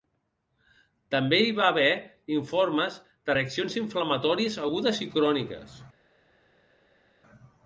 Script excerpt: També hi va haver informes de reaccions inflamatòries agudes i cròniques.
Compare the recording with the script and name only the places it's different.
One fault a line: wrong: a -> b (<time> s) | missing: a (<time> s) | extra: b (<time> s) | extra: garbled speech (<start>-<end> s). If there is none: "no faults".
no faults